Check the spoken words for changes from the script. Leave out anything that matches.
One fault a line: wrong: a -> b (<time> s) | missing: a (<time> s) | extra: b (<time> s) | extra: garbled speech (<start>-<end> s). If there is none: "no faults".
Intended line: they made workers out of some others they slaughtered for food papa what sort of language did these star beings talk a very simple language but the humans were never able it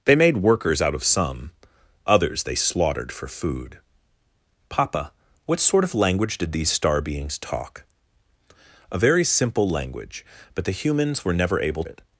no faults